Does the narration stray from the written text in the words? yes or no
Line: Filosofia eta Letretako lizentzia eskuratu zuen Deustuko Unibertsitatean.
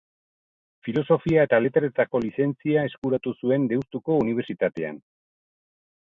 no